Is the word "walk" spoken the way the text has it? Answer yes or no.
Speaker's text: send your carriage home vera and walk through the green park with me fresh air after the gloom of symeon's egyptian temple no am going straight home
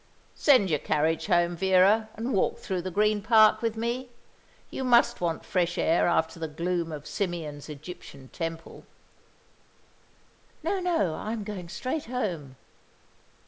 yes